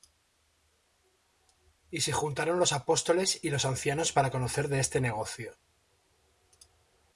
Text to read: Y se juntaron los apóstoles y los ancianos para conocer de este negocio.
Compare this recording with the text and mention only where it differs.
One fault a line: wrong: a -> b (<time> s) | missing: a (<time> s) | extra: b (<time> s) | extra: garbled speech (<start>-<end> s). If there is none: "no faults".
no faults